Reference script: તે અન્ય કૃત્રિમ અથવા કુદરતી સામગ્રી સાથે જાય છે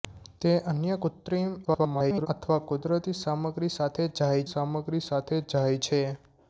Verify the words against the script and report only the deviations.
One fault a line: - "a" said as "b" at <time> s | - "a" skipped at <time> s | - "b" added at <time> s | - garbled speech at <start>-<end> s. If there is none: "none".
- garbled speech at 1.6-2.3 s
- "સામગ્રી સાથે જાય" added at 4.5 s